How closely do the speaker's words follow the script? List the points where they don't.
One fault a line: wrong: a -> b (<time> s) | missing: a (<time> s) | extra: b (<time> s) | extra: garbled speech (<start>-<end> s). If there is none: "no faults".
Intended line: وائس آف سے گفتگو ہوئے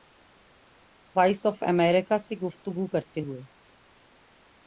extra: امریکہ (1.6 s)
extra: کرتے (2.9 s)